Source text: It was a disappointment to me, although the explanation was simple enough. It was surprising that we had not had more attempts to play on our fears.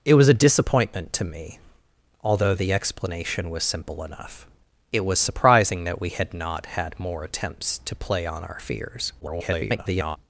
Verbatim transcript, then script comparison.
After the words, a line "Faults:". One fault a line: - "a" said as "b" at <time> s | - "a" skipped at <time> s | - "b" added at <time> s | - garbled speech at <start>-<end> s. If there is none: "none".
It was a disappointment to me, although the explanation was simple enough. It was surprising that we had not had more attempts to play on our fears. [garbled]
Faults:
- garbled speech at 9.2-10.2 s